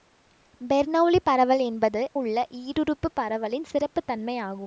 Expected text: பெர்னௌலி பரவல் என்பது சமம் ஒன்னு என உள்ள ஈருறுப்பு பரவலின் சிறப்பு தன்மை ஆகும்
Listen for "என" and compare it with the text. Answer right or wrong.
wrong